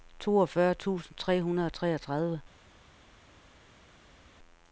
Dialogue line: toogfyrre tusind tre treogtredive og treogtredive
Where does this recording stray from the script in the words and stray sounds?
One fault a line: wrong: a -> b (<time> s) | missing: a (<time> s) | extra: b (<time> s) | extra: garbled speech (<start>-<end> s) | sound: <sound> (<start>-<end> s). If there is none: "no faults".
wrong: treogtredive -> hundrede (1.4 s)